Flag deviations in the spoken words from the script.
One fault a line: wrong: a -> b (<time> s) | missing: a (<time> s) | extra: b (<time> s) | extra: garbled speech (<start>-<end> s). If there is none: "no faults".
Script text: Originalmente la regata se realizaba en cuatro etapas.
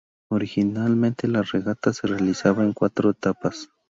no faults